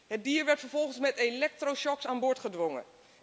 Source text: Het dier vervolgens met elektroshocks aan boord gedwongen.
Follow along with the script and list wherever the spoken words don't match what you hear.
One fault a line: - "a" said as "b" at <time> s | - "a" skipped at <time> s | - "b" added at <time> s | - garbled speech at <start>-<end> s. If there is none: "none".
- "werd" added at 0.5 s